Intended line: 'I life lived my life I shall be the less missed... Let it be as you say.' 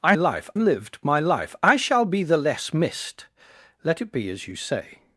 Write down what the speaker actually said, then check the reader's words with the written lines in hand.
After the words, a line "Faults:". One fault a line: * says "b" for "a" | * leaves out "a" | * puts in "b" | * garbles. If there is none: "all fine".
'I life lived my life I shall be the less missed... Let it be as you say.'
Faults:
all fine